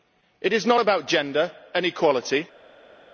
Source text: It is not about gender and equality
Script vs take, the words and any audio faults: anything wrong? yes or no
no